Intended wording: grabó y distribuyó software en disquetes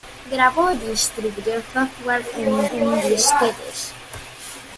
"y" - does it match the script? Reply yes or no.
no